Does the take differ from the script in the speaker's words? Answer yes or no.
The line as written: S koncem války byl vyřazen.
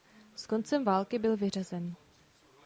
no